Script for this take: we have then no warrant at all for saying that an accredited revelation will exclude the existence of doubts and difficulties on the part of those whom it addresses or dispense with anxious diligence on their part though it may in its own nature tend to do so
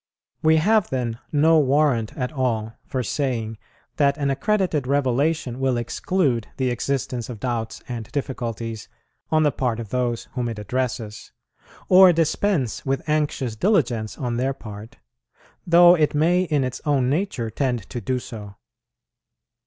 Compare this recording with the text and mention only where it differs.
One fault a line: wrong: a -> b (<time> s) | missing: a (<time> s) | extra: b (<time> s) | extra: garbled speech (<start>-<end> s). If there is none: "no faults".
no faults